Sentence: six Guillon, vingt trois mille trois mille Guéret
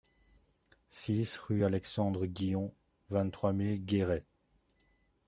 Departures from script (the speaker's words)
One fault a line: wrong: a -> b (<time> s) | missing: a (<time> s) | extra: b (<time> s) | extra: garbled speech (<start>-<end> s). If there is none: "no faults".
extra: rue Alexandre (1.4 s)
missing: trois mille (3.8 s)